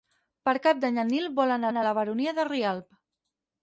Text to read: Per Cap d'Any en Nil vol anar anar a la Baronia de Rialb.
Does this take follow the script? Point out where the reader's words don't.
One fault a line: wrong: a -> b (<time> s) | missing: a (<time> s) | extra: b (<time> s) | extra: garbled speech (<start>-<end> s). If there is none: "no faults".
no faults